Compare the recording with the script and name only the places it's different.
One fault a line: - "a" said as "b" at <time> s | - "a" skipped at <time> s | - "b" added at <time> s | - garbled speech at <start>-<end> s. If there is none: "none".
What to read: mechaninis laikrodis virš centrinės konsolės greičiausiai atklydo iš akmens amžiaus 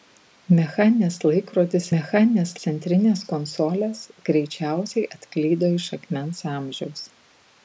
- "virš" said as "mechaninis" at 1.9 s